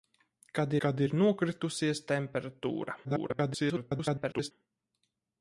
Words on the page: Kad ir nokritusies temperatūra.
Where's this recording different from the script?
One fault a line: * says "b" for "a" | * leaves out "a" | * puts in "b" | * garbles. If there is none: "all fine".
* puts in "kad"
* garbles